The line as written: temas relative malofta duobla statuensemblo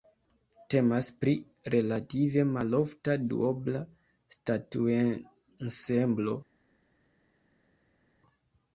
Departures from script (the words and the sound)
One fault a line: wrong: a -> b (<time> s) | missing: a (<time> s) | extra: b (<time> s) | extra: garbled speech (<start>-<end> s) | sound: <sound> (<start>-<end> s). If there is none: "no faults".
extra: pri (1.2 s)